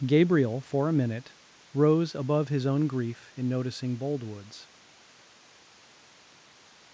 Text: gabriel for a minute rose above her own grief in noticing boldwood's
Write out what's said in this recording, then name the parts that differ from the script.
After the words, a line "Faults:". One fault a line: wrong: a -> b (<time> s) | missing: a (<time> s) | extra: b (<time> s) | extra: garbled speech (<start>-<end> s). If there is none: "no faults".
gabriel for a minute rose above his own grief in noticing boldwood's
Faults:
wrong: her -> his (2.5 s)